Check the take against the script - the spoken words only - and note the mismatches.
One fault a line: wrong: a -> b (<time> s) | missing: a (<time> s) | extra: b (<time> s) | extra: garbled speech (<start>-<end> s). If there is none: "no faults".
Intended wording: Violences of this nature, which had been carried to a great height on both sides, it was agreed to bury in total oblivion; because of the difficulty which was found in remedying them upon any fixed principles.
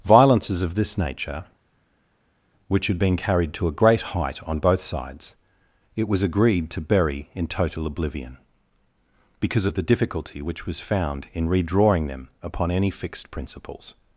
wrong: remedying -> redrawing (11.5 s)